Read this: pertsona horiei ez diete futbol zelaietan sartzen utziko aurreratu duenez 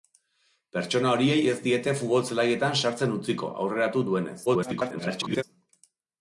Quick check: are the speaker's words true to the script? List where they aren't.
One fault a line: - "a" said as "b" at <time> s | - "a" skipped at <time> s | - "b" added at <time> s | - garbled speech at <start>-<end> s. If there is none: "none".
- garbled speech at 4.5-5.4 s